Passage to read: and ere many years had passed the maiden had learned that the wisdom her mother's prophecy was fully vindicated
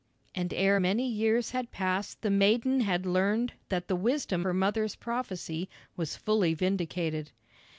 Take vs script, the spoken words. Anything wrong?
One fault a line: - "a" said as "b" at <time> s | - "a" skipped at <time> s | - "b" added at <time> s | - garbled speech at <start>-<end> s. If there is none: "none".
none